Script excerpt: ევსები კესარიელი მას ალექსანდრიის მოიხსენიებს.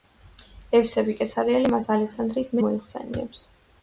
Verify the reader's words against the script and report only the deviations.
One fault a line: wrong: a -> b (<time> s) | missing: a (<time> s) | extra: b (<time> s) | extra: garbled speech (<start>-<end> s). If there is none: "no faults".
no faults